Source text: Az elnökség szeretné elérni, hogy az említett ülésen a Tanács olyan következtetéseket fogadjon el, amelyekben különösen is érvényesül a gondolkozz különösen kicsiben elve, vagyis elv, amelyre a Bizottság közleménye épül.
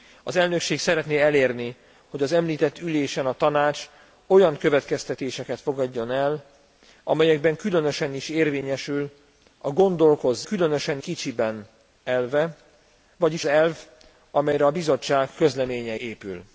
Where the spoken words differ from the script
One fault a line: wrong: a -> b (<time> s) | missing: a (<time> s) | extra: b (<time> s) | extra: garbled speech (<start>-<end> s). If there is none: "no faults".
no faults